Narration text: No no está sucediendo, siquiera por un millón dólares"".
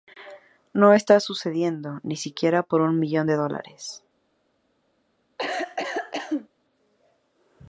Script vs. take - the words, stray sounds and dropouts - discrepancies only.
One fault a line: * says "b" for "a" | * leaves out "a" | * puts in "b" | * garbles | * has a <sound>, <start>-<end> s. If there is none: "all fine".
* leaves out "no"
* puts in "ni"
* puts in "de"
* has a cough, 5.4-6.5 s